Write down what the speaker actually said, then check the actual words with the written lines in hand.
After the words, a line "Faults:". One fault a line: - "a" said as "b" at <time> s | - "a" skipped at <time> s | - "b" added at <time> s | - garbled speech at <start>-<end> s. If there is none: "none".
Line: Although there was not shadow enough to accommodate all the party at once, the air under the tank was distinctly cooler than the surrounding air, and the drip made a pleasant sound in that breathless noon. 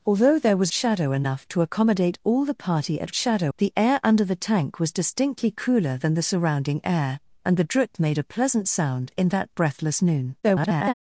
Although there was shadow enough to accommodate all the party at shadow, the air under the tank was distinctly cooler than the surrounding air, and the drip made a pleasant sound in that breathless noon. [garbled]
Faults:
- "not" skipped at 0.7 s
- "once" said as "shadow" at 3.1 s
- garbled speech at 10.4-10.9 s